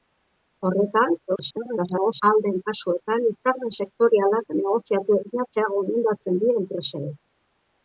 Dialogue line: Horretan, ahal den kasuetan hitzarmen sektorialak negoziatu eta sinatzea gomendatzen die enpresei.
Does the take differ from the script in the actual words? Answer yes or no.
yes